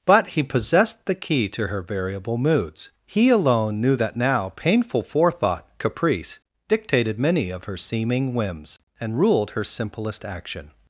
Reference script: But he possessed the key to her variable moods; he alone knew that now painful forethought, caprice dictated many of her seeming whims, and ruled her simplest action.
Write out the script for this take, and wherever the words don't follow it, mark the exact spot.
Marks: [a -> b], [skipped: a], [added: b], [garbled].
But he possessed the key to her variable moods; he alone knew that now painful forethought, caprice dictated many of her seeming whims, and ruled her simplest action.